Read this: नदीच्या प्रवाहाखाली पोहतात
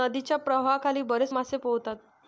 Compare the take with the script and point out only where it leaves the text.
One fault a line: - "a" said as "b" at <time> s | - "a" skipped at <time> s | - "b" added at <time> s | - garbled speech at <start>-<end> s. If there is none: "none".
- "बरेच मासे" added at 1.0 s